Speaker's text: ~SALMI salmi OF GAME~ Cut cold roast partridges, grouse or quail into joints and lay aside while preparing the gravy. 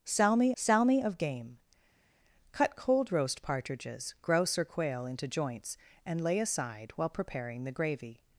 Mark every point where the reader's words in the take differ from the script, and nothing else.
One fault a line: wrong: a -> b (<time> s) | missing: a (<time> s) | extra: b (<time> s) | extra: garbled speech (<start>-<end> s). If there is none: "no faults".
no faults